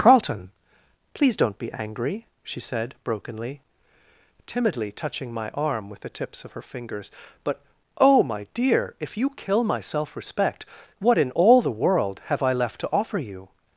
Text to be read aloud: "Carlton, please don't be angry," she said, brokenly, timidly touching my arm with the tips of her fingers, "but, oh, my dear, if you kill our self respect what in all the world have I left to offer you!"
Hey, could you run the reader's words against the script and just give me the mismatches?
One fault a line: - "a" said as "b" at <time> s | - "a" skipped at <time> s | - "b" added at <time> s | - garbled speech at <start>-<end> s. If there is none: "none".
- "our" said as "my" at 9.6 s